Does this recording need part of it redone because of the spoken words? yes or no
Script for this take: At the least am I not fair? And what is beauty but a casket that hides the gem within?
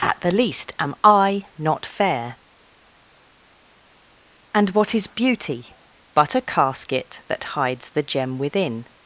no